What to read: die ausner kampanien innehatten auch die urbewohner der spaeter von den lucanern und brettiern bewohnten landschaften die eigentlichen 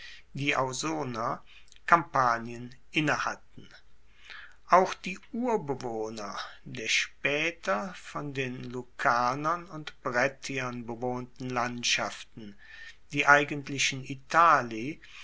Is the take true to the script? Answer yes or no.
yes